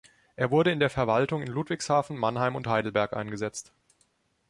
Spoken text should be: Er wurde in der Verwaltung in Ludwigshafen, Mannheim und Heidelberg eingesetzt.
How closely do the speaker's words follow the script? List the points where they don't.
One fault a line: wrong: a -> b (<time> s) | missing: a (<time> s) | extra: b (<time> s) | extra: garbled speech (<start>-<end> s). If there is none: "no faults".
no faults